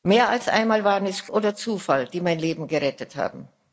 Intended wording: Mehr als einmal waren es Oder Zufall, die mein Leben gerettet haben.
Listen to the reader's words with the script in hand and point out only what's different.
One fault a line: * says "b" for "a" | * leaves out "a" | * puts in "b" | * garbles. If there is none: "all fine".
all fine